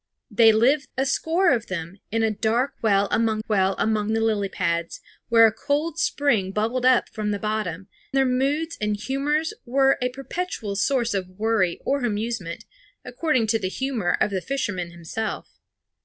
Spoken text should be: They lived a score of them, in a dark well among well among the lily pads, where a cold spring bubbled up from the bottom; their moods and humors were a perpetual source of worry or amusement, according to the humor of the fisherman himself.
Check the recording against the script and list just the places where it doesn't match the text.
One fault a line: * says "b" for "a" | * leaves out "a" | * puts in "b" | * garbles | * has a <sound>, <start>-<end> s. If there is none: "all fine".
all fine